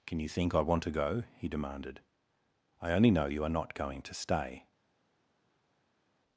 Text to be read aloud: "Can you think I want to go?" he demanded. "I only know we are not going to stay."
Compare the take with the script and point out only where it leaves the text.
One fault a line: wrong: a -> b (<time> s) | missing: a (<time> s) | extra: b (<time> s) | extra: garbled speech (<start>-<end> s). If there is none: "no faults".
wrong: we -> you (3.3 s)